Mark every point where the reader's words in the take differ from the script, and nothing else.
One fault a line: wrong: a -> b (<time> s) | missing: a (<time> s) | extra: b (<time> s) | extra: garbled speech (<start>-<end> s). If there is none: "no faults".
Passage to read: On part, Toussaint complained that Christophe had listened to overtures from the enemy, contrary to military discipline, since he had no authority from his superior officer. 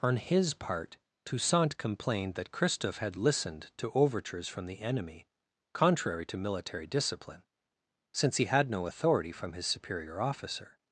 extra: his (0.1 s)